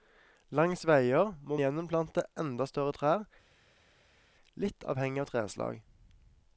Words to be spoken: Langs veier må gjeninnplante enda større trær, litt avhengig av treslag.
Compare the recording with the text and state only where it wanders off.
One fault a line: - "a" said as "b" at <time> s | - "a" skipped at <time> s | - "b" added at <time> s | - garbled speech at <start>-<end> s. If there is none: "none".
none